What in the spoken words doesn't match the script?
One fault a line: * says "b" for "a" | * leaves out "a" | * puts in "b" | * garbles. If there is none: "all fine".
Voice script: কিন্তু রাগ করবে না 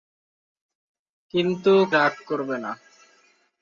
all fine